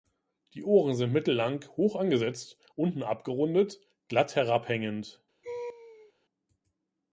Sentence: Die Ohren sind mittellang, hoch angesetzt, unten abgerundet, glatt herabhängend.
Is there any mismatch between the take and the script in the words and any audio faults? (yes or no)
yes